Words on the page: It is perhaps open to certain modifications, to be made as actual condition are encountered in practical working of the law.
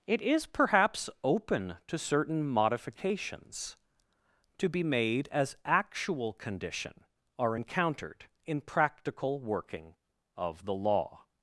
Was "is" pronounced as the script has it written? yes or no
yes